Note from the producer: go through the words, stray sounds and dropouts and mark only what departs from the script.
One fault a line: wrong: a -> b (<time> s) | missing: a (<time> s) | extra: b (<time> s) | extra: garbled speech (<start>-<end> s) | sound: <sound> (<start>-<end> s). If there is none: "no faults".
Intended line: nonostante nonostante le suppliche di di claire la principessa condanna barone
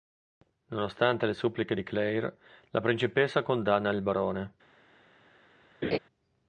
missing: nonostante (1.3 s)
missing: di (1.8 s)
extra: il (3.9 s)
sound: laugh (5.8-6.0 s)